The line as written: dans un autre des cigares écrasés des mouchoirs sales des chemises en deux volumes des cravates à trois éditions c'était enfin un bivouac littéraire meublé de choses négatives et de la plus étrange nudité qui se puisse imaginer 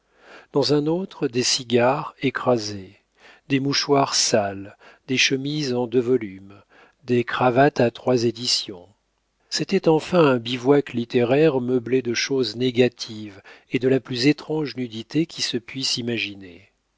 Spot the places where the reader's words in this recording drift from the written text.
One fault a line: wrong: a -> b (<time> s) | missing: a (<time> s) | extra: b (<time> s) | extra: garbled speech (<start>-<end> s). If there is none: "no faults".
no faults